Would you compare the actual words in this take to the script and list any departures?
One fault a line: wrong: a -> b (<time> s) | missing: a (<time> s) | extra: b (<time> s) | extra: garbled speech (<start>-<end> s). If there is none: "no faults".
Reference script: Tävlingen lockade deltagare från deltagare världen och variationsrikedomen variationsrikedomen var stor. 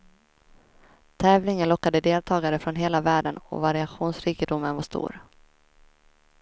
wrong: deltagare -> hela (2.8 s)
missing: variationsrikedomen (4.8 s)